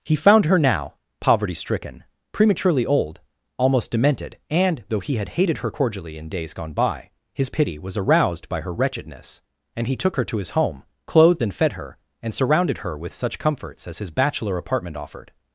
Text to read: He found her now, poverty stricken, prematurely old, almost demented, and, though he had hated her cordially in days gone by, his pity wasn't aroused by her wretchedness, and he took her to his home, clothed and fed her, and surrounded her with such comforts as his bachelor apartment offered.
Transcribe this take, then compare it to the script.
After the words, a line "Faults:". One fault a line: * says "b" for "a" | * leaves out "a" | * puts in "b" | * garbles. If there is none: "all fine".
He found her now, poverty stricken, prematurely old, almost demented, and, though he had hated her cordially in days gone by, his pity was aroused by her wretchedness, and he took her to his home, clothed and fed her, and surrounded her with such comforts as his bachelor apartment offered.
Faults:
* says "was" for "wasn't"